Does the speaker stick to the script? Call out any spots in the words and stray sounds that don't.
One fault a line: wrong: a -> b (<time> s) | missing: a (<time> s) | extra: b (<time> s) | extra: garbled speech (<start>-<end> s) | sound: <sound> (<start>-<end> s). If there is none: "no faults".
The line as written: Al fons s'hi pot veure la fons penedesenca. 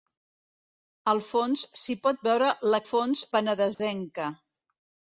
sound: dropout (3.7-3.8 s)